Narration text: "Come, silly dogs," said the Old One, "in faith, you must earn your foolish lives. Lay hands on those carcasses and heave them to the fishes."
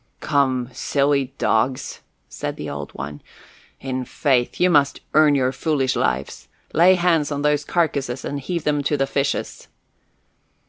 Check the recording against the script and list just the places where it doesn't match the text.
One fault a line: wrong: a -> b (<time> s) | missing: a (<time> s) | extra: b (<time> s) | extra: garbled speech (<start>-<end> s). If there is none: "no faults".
no faults